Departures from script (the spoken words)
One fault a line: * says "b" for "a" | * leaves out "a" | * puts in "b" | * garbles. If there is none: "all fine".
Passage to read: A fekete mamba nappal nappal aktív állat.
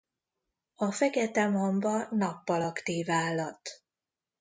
* leaves out "nappal"